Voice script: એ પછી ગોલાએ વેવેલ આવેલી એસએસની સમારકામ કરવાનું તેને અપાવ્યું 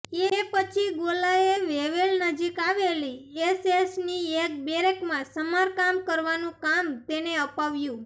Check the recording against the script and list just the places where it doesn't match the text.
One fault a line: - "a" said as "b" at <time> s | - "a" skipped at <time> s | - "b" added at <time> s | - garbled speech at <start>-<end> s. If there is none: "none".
- "નજીક" added at 2.2 s
- "એક બેરેકમાં" added at 4.4 s
- "કામ" added at 6.6 s